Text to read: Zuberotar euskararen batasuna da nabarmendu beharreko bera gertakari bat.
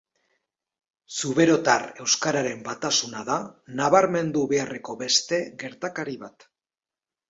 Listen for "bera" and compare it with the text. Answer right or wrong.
wrong